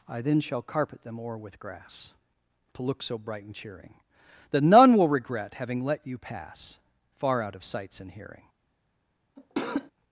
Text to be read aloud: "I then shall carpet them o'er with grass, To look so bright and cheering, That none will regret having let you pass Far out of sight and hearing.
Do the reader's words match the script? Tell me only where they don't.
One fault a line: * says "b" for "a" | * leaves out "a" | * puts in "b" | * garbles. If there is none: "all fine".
* says "sights" for "sight"